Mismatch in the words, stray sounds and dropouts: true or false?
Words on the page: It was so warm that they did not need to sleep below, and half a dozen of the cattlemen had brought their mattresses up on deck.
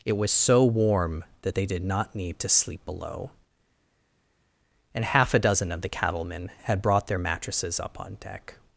false